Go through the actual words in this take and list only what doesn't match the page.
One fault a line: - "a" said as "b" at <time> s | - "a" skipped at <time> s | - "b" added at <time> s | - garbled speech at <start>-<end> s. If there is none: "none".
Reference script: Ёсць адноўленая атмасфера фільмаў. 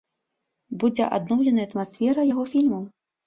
- "Ёсць" said as "Будзе" at 0.8 s
- "яго" added at 2.3 s